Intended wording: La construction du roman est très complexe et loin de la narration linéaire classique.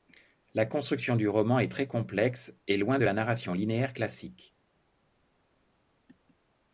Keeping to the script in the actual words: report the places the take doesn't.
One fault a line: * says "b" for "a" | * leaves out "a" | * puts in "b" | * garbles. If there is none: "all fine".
all fine